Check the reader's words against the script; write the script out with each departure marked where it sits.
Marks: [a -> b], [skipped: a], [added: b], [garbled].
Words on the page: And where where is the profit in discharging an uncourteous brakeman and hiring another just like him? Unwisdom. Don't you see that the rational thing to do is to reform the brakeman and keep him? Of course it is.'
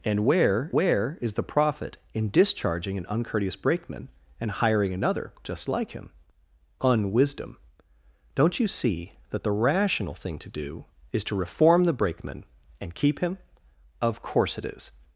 And where where is the profit in discharging an uncourteous brakeman and hiring another just like him? Unwisdom. Don't you see that the rational thing to do is to reform the brakeman and keep him? Of course it is.'